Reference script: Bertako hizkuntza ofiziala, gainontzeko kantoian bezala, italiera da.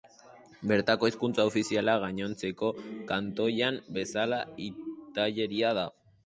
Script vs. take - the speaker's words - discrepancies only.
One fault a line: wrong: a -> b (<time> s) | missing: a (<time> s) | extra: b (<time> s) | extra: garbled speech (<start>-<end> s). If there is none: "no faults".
no faults